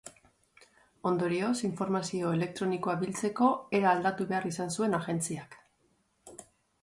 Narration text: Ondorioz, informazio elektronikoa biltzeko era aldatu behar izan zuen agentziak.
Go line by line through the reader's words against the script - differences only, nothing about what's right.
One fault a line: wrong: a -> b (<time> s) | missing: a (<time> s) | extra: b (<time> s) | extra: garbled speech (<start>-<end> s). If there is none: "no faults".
no faults